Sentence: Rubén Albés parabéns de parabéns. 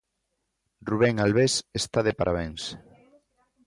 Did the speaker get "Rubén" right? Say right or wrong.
right